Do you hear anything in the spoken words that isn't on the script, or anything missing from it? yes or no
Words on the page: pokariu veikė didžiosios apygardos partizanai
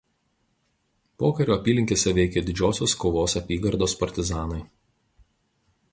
yes